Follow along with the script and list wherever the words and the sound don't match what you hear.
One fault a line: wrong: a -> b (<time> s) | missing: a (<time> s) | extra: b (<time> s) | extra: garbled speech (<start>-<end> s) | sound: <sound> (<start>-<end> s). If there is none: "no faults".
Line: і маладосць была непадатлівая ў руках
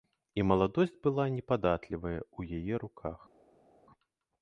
extra: яе (2.6 s)